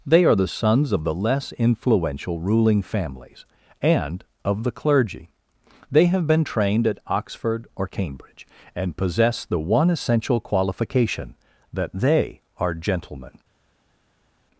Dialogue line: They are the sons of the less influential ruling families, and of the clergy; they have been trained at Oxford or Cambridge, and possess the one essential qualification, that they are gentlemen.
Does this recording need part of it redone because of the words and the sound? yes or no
no